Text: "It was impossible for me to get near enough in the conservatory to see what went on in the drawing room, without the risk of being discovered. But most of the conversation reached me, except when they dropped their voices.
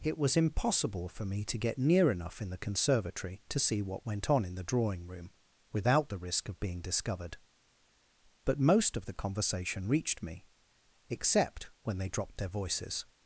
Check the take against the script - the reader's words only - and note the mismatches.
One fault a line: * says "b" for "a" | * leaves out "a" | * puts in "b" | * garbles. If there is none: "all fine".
all fine